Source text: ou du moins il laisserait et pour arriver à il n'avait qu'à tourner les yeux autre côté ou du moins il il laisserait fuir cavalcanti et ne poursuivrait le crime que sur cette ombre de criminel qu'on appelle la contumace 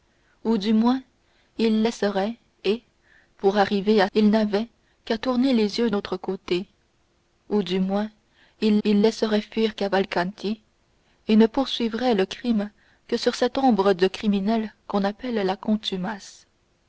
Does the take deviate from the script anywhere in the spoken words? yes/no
no